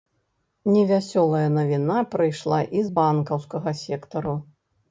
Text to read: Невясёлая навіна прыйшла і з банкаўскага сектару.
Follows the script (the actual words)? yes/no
yes